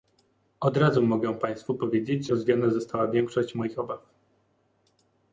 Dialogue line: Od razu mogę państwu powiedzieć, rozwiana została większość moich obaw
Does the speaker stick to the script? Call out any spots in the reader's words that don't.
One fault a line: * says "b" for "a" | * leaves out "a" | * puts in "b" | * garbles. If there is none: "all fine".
all fine